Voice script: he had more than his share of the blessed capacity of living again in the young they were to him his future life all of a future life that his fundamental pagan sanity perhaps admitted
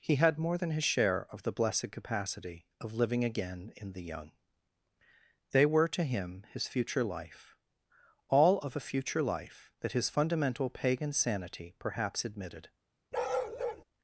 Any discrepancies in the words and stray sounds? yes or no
yes